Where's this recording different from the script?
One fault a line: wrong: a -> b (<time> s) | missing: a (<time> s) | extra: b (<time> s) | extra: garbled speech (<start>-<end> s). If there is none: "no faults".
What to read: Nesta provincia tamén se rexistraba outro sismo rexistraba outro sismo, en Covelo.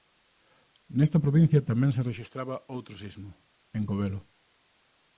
missing: rexistraba outro sismo (3.3 s)